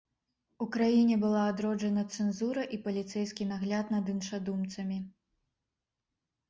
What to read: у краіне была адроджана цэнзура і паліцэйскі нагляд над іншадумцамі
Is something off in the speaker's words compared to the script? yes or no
no